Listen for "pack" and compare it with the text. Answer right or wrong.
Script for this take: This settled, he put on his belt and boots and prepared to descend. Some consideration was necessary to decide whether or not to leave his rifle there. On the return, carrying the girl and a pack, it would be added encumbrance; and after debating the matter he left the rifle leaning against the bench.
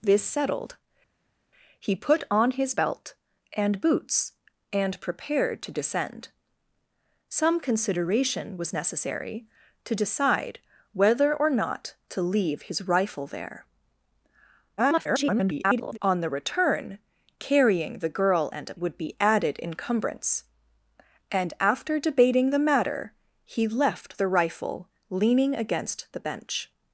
wrong